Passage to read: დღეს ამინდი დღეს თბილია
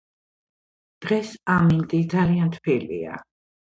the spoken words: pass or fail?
fail